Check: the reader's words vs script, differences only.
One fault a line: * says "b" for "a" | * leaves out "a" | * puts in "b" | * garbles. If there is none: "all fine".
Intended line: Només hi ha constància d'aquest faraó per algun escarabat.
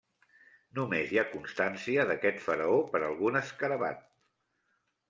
all fine